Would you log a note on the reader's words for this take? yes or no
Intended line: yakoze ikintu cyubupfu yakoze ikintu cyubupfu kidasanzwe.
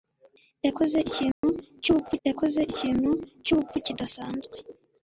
no